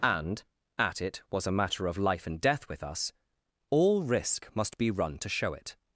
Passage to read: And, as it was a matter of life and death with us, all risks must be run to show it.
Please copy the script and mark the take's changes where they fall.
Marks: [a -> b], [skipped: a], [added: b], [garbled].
And, [as -> at] it was a matter of life and death with us, all [risks -> risk] must be run to show it.